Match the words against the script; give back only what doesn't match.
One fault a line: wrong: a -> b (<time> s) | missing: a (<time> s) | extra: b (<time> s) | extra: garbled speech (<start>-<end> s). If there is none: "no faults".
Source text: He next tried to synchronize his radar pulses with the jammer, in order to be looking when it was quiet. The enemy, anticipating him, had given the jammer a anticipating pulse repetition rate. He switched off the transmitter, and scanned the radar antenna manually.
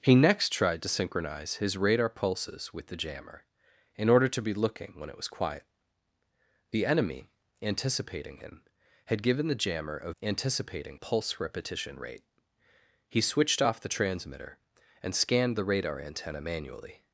no faults